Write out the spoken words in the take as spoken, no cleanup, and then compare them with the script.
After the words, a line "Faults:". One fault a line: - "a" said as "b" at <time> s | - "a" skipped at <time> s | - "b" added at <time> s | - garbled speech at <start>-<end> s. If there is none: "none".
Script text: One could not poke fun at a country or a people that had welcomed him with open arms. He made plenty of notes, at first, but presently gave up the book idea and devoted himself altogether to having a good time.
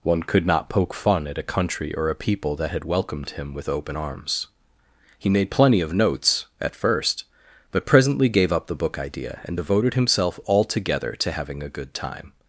One could not poke fun at a country or a people that had welcomed him with open arms. He made plenty of notes, at first, but presently gave up the book idea and devoted himself altogether to having a good time.
Faults:
none